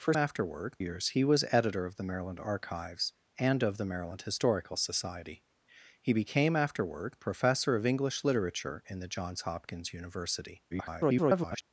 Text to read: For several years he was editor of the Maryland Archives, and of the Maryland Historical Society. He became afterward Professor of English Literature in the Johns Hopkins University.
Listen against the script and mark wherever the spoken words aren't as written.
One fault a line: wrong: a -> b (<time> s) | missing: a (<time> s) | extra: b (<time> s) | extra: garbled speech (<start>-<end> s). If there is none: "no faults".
wrong: several -> afterward (0.2 s)
extra: garbled speech (10.7-11.6 s)